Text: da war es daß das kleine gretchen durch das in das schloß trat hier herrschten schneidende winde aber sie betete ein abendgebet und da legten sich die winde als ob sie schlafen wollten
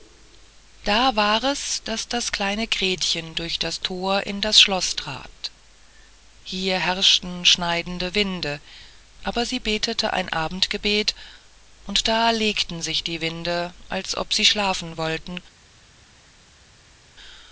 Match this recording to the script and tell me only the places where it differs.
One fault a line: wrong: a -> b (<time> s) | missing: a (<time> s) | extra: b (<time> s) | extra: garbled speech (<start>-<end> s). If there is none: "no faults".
extra: thor (3.8 s)